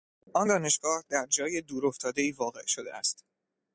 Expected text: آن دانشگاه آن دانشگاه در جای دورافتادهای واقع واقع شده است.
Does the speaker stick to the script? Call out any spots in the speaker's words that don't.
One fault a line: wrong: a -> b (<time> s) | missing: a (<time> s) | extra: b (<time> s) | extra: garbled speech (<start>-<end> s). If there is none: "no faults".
missing: آن دانشگاه (1.0 s)
missing: واقع (2.7 s)